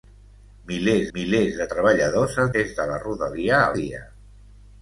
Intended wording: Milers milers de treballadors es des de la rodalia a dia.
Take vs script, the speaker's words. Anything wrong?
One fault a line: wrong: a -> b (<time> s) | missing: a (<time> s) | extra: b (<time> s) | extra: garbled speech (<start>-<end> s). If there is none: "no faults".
no faults